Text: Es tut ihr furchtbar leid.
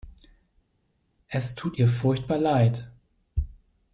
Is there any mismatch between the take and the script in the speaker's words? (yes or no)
no